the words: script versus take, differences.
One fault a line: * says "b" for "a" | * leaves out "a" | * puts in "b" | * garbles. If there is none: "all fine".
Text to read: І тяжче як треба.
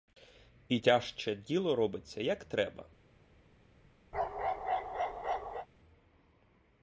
* puts in "діло робиться"